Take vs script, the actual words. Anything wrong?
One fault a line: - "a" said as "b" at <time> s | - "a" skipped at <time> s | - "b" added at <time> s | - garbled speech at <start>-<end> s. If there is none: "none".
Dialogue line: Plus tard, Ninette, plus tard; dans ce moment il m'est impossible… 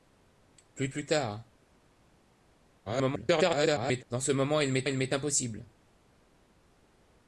- "tard Ninette" skipped at 0.9 s
- garbled speech at 2.9-4.0 s
- "il m'est" added at 4.8 s